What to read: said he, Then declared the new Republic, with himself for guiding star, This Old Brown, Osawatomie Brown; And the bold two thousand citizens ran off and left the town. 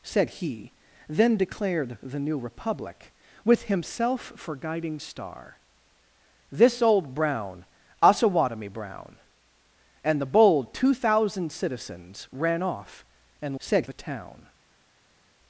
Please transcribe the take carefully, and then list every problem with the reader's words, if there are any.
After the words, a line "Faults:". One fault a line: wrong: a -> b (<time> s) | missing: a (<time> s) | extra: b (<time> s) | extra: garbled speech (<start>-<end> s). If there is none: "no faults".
said he, Then declared the new Republic, with himself for guiding star, This Old Brown, Osawatomie Brown; And the bold two thousand citizens ran off and said the town.
Faults:
wrong: left -> said (13.6 s)